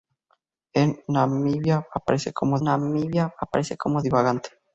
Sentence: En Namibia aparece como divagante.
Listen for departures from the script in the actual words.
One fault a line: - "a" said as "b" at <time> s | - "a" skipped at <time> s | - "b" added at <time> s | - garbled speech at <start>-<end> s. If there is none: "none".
- "Namibia aparece como" added at 2.6 s